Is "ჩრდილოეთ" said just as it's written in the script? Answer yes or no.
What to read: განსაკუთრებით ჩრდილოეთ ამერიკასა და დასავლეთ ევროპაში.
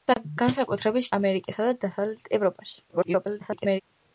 no